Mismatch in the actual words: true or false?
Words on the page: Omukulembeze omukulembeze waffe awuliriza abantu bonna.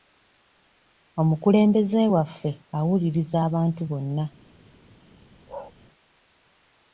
true